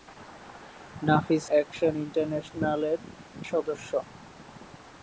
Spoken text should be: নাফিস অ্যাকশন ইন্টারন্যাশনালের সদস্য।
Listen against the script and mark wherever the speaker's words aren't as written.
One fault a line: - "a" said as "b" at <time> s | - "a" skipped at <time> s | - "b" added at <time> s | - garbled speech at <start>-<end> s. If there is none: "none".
none